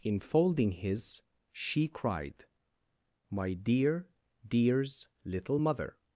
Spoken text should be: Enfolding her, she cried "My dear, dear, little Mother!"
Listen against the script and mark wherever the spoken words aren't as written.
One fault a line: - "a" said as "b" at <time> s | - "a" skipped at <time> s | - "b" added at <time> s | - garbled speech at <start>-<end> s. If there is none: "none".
- "her" said as "his" at 0.7 s
- "dear" said as "dears" at 4.5 s